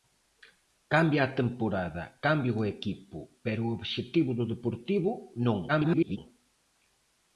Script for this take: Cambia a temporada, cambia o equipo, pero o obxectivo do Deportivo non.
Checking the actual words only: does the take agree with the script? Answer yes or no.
no